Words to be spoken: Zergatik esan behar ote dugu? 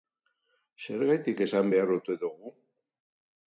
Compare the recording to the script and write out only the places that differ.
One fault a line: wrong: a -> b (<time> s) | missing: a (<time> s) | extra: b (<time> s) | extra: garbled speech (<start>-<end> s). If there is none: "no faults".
no faults